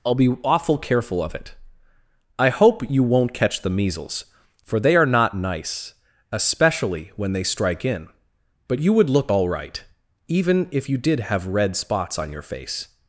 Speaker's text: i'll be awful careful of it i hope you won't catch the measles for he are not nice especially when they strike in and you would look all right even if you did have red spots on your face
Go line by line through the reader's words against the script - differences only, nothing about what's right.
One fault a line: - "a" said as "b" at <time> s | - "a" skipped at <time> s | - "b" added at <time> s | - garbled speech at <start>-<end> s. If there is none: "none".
- "he" said as "they" at 4.8 s
- "and" said as "but" at 8.7 s